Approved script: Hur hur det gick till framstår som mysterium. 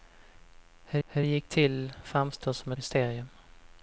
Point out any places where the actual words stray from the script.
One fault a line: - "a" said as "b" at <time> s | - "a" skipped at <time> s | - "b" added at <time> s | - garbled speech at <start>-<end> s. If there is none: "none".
none